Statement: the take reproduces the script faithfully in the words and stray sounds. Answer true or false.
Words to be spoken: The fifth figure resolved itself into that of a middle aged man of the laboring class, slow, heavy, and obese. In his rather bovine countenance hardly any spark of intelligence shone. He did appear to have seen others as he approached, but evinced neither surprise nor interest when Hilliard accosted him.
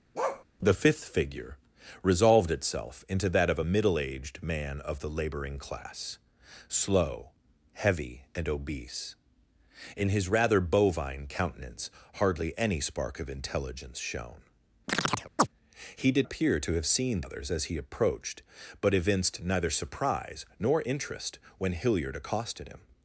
false